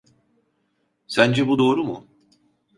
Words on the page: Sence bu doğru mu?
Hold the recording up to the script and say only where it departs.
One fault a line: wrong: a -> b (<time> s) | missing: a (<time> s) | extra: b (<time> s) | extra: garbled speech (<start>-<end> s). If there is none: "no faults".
no faults